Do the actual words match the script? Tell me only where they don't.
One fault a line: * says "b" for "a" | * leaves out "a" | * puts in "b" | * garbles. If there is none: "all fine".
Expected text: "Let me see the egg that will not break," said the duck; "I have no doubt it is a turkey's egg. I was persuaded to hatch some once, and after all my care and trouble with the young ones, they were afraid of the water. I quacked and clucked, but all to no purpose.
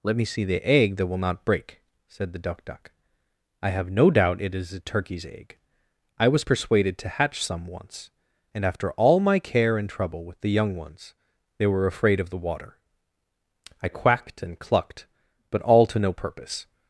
* puts in "duck"